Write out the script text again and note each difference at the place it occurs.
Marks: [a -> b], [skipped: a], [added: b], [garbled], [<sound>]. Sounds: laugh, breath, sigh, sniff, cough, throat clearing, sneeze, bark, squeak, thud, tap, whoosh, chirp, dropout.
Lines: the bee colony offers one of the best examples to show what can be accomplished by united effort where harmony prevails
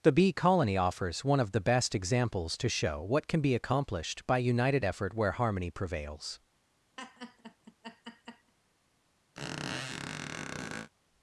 the bee colony offers one of the best examples to show what can be accomplished by united effort where harmony prevails [laugh] [squeak]